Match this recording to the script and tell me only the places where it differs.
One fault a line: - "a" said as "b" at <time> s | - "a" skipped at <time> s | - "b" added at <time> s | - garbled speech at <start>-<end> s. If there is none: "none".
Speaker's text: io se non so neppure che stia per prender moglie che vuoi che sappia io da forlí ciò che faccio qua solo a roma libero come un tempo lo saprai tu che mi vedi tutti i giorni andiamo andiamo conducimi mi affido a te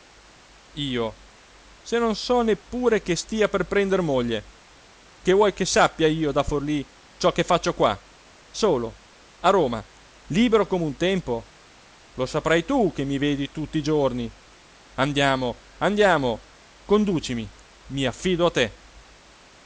none